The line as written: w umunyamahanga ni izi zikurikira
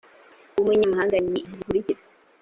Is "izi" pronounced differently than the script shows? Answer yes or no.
no